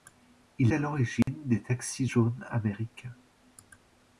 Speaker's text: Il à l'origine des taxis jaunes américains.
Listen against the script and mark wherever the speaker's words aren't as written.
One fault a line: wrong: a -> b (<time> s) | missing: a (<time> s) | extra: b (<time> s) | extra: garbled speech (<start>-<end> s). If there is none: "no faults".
no faults